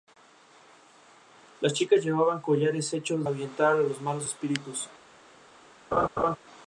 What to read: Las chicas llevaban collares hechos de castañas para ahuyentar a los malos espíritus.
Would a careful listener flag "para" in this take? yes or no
yes